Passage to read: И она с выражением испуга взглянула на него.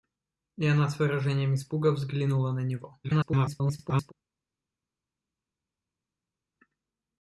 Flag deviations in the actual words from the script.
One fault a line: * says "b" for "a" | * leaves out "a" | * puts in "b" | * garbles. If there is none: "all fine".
* garbles